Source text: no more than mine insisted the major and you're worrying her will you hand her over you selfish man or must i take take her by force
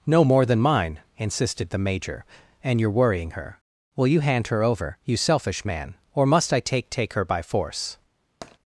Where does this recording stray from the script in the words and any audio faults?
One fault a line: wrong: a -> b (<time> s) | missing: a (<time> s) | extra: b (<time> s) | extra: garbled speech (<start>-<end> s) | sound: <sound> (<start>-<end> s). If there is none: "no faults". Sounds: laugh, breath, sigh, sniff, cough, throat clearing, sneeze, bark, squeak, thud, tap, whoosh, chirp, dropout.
sound: tap (8.4-8.6 s)